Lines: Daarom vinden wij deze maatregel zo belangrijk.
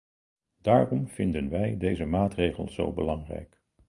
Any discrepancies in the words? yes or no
no